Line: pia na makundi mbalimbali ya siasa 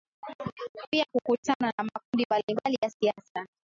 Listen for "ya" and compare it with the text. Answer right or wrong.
right